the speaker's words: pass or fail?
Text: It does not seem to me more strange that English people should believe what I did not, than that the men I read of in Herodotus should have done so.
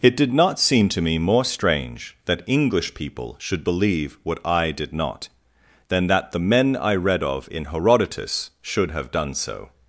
fail